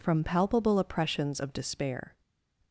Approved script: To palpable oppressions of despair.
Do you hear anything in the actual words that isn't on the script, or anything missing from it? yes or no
yes